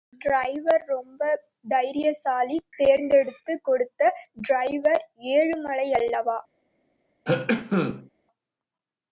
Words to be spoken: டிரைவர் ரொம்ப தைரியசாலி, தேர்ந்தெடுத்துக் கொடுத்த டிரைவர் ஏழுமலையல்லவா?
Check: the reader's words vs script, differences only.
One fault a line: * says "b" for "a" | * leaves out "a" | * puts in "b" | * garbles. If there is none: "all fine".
all fine